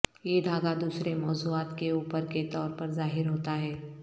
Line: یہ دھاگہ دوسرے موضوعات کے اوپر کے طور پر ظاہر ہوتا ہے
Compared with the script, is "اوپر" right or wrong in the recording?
right